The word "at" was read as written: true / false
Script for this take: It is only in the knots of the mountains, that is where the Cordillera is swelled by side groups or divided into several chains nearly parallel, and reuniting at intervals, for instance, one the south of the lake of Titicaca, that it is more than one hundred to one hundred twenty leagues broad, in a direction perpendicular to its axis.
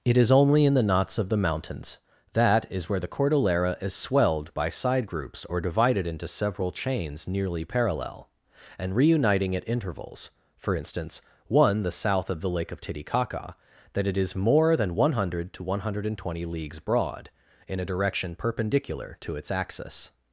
true